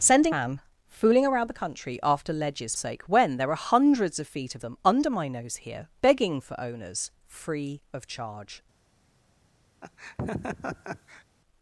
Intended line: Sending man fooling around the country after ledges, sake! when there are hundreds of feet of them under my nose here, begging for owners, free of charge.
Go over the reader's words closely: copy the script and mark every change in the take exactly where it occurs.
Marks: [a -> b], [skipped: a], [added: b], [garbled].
Sending man fooling around the country after ledges, sake! when there are hundreds of feet of them under my nose here, begging for owners, free of charge.